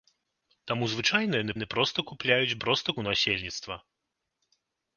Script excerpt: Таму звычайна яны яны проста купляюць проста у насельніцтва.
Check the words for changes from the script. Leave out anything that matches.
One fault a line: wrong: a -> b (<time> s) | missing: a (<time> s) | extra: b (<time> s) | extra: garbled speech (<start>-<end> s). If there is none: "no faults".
no faults